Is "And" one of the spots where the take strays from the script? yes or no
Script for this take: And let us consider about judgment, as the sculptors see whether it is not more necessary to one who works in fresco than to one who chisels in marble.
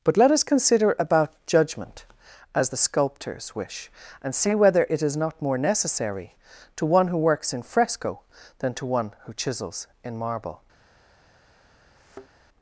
yes